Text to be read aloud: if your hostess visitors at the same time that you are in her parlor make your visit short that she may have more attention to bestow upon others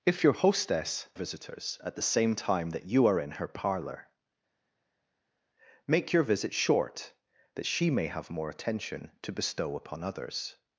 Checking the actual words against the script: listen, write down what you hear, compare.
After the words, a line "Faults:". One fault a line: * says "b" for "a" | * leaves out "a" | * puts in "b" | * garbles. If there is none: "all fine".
if your hostess visitors at the same time that you are in her parlor make your visit short that she may have more attention to bestow upon others
Faults:
all fine